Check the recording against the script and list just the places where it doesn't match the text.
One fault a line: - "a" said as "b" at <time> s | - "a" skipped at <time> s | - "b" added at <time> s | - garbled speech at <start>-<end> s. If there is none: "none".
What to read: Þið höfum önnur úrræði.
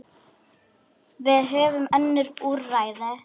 - "Þið" said as "Við" at 1.3 s